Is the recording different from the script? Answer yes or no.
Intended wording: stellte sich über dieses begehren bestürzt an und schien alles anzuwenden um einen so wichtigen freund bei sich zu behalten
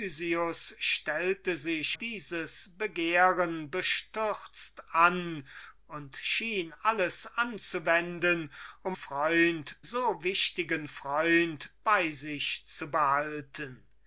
yes